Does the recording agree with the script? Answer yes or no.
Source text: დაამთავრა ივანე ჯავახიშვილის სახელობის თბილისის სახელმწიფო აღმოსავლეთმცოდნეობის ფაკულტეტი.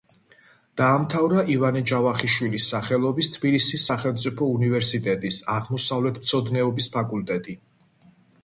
no